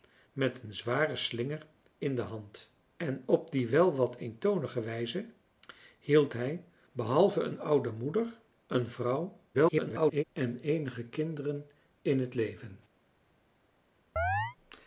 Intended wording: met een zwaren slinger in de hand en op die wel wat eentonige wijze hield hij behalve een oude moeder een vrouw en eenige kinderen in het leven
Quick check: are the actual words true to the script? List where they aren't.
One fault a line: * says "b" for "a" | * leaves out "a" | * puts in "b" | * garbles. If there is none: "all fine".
* garbles